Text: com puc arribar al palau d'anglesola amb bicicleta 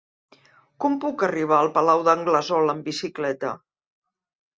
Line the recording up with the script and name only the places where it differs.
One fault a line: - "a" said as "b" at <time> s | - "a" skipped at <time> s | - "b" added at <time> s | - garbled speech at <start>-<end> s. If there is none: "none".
none